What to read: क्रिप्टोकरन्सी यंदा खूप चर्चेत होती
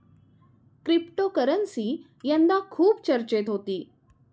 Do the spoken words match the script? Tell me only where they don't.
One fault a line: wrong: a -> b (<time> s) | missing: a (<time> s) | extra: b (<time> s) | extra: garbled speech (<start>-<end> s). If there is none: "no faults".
no faults